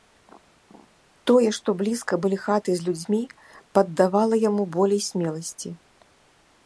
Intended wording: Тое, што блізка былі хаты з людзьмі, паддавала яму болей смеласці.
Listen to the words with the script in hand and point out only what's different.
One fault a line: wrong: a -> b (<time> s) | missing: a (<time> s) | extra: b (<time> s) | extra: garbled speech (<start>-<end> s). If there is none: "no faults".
no faults